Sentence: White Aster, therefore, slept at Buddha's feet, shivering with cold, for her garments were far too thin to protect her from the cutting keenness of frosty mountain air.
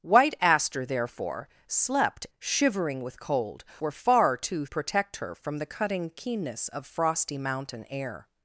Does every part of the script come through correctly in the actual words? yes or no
no